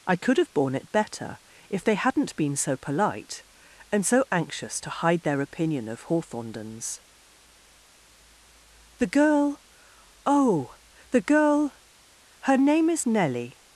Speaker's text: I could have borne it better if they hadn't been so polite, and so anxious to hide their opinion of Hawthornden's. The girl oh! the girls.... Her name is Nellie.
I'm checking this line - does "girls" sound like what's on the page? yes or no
no